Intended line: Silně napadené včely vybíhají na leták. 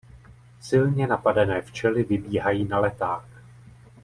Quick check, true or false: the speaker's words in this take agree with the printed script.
true